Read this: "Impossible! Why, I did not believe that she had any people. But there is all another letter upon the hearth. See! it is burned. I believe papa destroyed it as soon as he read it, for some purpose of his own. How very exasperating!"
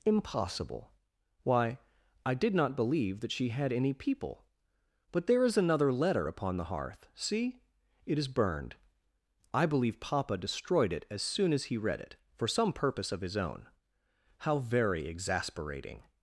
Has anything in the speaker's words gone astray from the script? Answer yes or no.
yes